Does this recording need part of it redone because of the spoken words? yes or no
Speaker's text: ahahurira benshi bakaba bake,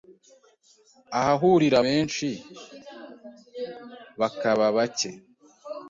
no